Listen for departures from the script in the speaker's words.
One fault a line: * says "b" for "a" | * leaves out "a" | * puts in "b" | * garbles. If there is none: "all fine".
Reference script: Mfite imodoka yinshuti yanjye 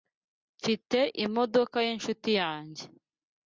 all fine